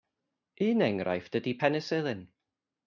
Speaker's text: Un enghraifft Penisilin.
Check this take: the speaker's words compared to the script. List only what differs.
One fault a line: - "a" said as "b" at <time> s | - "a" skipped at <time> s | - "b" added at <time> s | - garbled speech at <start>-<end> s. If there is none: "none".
- "ydy" added at 1.4 s